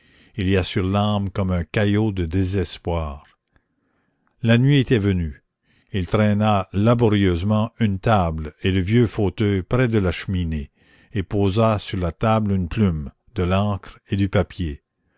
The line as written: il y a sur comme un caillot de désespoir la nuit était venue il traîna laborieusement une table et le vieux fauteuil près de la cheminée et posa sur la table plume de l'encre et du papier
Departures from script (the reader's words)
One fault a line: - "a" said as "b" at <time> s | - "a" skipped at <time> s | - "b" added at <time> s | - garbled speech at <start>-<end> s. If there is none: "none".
- "l'âme" added at 0.8 s
- "une" added at 12.5 s